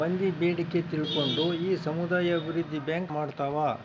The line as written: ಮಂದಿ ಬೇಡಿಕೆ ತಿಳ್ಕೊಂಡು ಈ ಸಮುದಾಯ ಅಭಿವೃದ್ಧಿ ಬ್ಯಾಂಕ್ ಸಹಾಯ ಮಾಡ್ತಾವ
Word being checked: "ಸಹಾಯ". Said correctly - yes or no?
no